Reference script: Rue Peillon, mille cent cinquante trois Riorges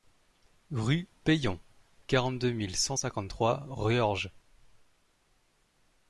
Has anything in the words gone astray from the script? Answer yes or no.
yes